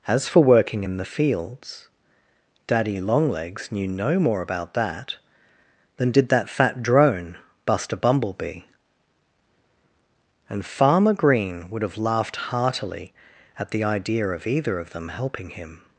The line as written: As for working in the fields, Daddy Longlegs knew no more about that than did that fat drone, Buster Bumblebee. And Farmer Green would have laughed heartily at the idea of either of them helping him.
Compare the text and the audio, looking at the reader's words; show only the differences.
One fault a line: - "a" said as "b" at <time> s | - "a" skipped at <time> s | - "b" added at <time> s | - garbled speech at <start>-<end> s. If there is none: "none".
none